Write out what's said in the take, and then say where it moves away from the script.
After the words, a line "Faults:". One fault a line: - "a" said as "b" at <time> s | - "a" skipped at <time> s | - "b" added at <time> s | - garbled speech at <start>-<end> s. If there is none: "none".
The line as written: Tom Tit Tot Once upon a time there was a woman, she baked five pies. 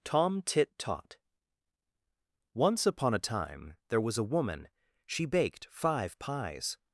Tom Tit Tot Once upon a time there was a woman, she baked five pies.
Faults:
none